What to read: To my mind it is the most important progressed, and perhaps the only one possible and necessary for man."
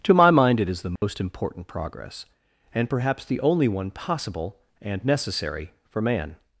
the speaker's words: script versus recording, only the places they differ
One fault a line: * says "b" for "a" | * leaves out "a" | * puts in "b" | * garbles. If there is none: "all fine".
* says "progress" for "progressed"